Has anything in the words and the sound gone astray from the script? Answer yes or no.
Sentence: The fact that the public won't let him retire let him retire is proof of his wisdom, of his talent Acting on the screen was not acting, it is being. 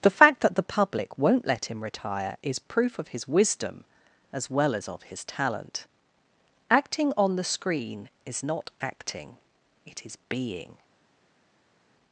yes